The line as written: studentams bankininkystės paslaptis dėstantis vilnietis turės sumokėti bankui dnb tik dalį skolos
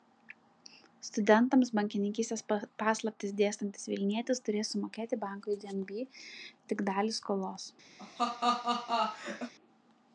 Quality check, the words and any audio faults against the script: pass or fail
fail